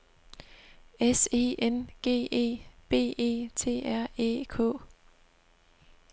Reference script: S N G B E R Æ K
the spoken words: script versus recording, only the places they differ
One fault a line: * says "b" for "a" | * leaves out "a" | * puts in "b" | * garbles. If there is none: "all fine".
* puts in "E"
* puts in "E"
* puts in "T"